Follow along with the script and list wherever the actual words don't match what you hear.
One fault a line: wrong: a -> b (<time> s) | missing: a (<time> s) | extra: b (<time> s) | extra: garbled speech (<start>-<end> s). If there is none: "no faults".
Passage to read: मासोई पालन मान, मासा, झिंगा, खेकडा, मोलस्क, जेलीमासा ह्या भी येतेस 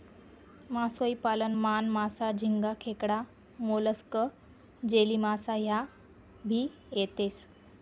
no faults